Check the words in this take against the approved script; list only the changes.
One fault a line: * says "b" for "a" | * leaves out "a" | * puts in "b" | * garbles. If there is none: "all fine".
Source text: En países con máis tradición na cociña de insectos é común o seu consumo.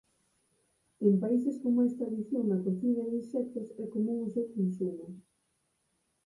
all fine